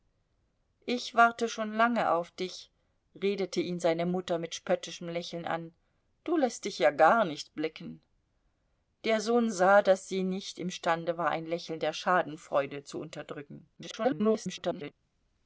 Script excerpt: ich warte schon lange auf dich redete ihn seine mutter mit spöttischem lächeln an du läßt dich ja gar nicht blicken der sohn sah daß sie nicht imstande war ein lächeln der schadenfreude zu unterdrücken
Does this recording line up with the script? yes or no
no